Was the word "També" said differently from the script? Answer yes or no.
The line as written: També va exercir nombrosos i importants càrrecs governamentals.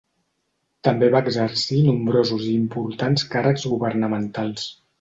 no